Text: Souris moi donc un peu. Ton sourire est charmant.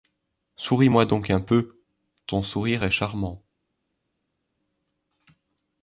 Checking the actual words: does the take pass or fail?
pass